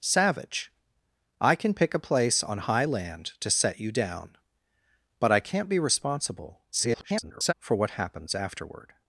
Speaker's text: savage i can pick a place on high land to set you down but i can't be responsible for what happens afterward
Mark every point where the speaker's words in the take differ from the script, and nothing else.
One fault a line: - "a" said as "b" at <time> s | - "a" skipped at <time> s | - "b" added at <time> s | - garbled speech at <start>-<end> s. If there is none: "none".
- garbled speech at 6.7-7.5 s